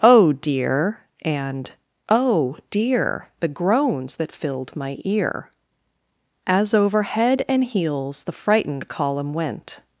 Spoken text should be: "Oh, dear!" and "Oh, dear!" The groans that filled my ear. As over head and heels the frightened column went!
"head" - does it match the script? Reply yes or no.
yes